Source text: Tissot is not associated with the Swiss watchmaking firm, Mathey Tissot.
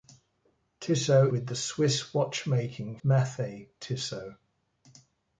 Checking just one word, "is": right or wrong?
wrong